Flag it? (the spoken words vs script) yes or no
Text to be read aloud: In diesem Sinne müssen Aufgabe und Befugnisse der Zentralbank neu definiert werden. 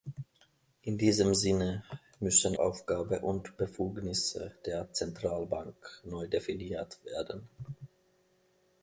no